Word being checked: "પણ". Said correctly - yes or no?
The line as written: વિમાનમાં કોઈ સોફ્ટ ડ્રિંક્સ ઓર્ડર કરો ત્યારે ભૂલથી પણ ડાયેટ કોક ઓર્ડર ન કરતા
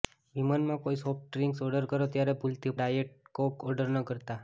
no